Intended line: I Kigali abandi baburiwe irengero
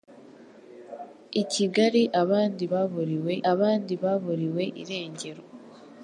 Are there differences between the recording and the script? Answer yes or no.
yes